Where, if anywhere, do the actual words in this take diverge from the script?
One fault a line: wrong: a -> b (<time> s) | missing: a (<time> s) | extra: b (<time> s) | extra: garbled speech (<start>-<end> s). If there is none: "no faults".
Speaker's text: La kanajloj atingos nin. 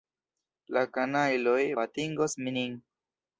no faults